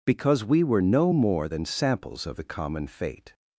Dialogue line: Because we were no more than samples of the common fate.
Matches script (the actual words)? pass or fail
pass